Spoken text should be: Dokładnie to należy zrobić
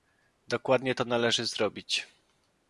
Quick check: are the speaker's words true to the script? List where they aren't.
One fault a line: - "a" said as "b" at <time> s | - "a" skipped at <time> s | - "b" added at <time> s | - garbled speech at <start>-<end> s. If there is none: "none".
none